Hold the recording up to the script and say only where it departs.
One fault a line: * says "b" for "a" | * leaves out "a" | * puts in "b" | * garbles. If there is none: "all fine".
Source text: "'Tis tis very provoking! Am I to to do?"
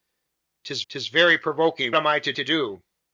all fine